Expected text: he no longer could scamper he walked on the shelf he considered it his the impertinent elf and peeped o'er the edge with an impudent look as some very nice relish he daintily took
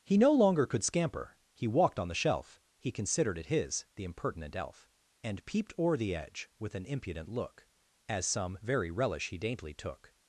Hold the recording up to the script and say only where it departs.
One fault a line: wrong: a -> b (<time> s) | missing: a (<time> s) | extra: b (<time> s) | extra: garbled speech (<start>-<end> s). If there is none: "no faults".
missing: nice (8.9 s)